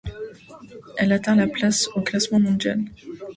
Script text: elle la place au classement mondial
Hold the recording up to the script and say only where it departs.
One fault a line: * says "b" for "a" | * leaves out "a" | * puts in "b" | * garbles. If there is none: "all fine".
* puts in "atteint"